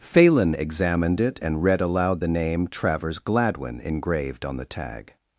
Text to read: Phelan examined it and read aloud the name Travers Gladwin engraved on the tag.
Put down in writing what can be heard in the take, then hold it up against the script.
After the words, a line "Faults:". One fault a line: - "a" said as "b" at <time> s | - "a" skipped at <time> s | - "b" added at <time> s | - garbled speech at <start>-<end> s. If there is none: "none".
Phelan examined it and read aloud the name Travers Gladwin engraved on the tag.
Faults:
none